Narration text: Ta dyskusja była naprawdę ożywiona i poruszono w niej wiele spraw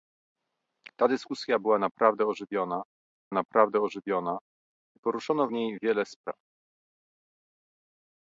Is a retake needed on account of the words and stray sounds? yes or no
yes